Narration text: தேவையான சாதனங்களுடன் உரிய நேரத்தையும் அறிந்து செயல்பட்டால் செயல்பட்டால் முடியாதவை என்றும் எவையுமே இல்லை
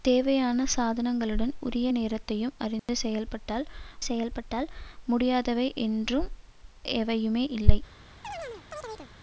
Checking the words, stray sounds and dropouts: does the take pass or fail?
fail